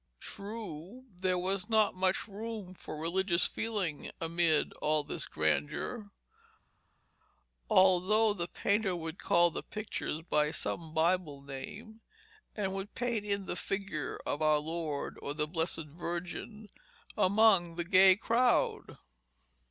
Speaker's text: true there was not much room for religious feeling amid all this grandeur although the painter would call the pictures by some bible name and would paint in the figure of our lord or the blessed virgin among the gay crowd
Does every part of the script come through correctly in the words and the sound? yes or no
yes